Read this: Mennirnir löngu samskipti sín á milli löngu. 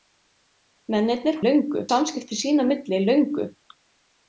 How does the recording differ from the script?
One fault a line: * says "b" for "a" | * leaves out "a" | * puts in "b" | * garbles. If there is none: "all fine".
all fine